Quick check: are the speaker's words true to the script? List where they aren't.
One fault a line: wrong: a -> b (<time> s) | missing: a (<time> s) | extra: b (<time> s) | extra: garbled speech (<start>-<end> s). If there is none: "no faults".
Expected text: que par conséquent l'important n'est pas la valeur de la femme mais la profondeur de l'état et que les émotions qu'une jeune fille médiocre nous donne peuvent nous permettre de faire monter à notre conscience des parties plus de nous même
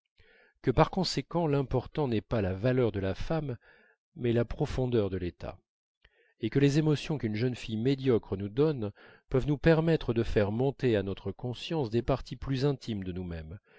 extra: intimes (12.6 s)